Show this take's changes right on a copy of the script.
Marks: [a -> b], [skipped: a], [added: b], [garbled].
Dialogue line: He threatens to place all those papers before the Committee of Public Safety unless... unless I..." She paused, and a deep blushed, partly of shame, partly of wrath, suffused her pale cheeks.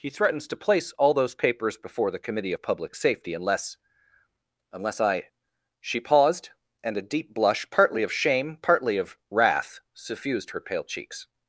He threatens to place all those papers before the Committee of Public Safety unless... unless I..." She paused, and a deep [blushed, -> blush] partly of shame, partly of wrath, suffused her pale cheeks.